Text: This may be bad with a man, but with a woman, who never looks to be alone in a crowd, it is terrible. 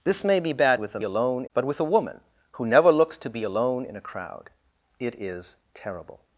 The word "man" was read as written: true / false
false